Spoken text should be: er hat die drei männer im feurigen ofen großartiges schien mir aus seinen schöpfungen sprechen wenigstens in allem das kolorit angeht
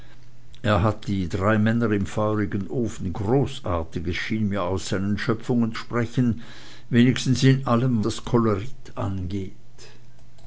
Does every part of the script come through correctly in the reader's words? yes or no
yes